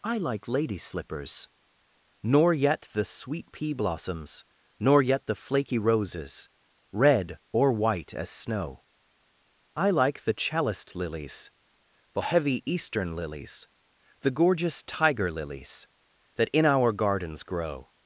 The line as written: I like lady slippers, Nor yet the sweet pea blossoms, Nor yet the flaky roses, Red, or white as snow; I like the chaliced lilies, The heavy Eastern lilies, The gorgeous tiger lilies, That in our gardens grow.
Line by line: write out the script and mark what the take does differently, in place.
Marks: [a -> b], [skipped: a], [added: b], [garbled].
I like lady slippers, Nor yet the sweet pea blossoms, Nor yet the flaky roses, Red, or white as snow; I like the chaliced lilies, The heavy Eastern lilies, The gorgeous tiger lilies, That in our gardens grow.